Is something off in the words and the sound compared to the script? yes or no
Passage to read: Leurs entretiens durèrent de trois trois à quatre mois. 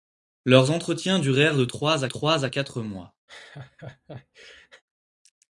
yes